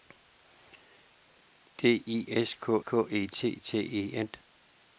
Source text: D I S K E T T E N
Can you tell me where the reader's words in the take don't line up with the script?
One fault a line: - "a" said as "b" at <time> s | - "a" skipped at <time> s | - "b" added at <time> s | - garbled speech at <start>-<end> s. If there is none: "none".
- "K" added at 2.8 s